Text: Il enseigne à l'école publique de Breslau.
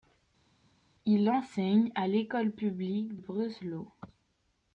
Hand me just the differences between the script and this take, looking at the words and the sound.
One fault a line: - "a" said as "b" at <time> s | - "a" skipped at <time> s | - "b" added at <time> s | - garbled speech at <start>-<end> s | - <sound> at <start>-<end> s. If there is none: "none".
- "de" skipped at 3.2 s